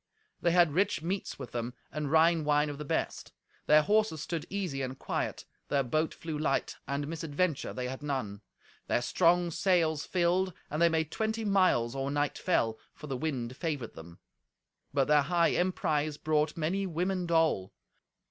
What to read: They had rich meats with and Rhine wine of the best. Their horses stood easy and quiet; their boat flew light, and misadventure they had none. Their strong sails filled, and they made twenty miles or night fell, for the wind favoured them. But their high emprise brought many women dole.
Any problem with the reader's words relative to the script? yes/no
yes